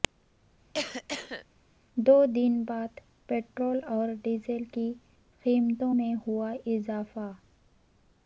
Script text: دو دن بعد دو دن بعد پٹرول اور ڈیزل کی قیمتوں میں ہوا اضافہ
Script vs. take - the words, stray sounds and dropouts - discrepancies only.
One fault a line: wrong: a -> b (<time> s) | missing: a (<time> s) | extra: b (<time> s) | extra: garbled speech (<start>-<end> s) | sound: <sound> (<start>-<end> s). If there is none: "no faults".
sound: cough (0.7-1.5 s)
missing: دو دن بعد (3.0 s)